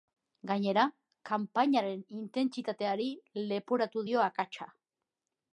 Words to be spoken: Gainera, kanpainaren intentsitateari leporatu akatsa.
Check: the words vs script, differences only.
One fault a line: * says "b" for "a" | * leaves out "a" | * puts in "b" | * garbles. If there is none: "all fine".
* puts in "dio"